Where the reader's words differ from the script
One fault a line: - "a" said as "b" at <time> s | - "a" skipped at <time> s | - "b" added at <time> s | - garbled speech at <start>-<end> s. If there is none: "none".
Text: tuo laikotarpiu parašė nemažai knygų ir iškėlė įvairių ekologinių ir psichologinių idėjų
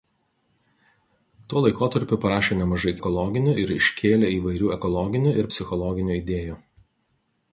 - "knygų" said as "ekologinių" at 3.0 s